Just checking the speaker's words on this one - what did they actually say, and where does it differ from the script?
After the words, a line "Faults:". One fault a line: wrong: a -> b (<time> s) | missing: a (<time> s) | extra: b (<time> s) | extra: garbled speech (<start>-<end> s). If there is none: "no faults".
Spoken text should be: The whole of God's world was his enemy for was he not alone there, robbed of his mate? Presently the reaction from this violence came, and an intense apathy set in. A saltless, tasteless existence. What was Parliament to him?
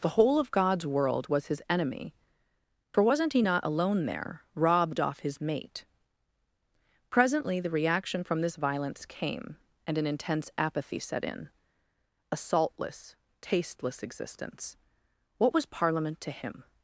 The whole of God's world was his enemy for wasn't he not alone there, robbed off his mate? Presently the reaction from this violence came, and an intense apathy set in. A saltless, tasteless existence. What was Parliament to him?
Faults:
wrong: was -> wasn't (3.0 s)
wrong: of -> off (5.0 s)